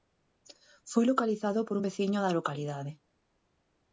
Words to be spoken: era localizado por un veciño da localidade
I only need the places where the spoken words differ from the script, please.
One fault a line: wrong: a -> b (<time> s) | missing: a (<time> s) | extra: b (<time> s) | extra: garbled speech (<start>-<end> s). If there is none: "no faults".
wrong: era -> foi (0.9 s)